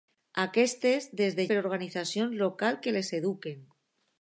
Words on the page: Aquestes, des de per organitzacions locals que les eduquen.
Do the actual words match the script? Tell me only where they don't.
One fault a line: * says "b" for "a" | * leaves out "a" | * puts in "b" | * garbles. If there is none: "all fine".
all fine